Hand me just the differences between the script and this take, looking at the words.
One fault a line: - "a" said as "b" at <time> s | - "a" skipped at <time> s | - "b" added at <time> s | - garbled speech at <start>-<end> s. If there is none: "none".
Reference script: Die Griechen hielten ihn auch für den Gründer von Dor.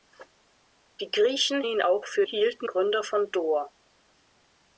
- "hielten" skipped at 1.6 s
- "den" said as "hielten" at 2.2 s